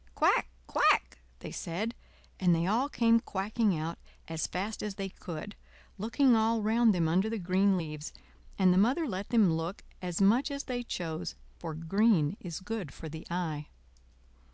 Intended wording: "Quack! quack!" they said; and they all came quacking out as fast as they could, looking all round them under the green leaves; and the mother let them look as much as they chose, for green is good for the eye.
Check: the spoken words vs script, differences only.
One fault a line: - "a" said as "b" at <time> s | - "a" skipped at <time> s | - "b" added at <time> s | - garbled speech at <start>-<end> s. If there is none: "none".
none